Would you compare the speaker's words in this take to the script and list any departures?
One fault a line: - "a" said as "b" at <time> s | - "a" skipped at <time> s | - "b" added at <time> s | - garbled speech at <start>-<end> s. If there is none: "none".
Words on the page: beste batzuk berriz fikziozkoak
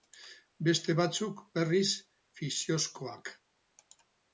none